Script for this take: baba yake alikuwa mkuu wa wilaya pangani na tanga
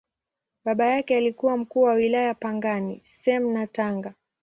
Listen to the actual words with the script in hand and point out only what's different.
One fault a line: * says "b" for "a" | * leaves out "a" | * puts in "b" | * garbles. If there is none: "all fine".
* puts in "same"